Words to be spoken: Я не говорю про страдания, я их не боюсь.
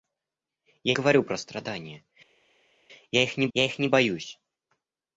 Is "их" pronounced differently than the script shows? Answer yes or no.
no